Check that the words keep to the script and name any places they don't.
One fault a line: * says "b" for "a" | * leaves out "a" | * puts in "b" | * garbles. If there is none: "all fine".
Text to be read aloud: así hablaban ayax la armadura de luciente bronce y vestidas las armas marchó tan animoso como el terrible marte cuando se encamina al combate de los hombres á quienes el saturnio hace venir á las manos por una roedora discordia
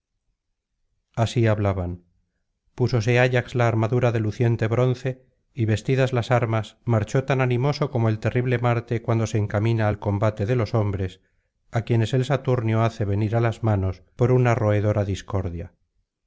* puts in "púsose"